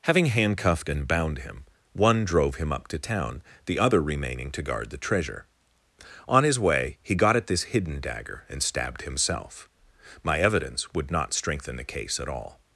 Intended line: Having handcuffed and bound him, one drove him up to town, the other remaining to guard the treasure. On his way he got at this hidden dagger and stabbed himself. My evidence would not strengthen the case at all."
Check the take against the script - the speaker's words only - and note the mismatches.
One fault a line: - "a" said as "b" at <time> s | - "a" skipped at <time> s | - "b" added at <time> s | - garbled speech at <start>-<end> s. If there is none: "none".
none